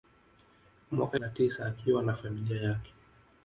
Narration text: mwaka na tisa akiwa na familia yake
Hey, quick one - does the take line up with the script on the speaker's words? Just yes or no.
yes